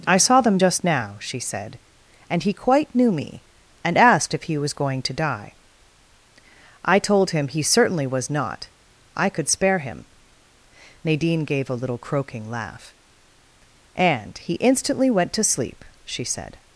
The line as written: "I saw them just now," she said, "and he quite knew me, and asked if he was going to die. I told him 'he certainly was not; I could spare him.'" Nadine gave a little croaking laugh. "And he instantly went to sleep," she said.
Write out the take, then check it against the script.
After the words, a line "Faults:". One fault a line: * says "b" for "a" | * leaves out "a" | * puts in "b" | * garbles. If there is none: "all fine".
"I saw them just now," she said, "and he quite knew me, and asked if he was going to die. I told him 'he certainly was not; I could spare him.'" Nadine gave a little croaking laugh. "And he instantly went to sleep," she said.
Faults:
all fine